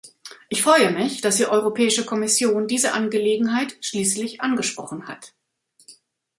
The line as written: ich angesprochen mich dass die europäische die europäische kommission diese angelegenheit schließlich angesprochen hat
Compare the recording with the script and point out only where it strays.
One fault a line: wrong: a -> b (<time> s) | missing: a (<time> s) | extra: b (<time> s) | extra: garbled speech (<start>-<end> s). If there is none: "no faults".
wrong: angesprochen -> freue (0.6 s)
missing: die europäische (2.0 s)